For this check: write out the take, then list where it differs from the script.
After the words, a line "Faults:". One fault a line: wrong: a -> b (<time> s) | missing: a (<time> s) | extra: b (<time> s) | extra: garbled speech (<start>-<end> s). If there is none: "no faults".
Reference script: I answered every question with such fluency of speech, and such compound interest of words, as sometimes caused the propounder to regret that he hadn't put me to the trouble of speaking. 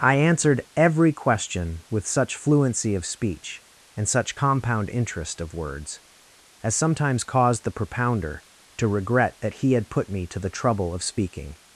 I answered every question with such fluency of speech, and such compound interest of words, as sometimes caused the propounder to regret that he had put me to the trouble of speaking.
Faults:
wrong: hadn't -> had (9.7 s)